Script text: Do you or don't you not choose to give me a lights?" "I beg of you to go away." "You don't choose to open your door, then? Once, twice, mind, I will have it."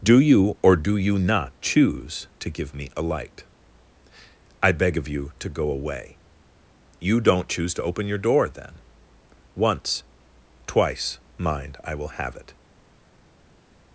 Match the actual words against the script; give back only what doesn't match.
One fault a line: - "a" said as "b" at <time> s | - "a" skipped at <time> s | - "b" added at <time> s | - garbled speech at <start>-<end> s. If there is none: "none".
- "don't" said as "do" at 0.8 s
- "lights" said as "light" at 3.0 s